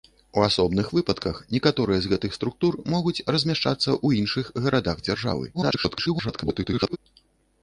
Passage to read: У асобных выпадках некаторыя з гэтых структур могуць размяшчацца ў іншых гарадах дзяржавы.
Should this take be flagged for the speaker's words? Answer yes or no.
yes